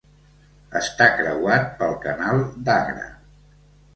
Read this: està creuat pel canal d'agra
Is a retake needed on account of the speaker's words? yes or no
no